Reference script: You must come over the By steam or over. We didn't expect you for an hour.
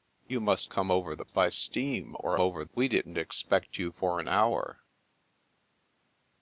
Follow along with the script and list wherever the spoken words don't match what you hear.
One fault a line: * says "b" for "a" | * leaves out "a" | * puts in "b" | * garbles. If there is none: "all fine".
all fine